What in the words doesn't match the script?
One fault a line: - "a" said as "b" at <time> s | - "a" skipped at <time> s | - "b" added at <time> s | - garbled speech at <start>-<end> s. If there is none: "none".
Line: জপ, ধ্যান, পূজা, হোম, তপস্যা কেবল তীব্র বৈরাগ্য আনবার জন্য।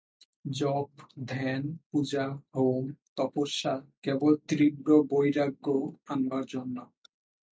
none